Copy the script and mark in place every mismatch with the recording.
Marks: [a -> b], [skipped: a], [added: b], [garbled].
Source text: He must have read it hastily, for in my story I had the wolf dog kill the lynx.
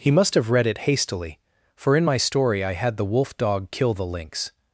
He must have read it hastily, for in my story I had the wolf dog kill the lynx.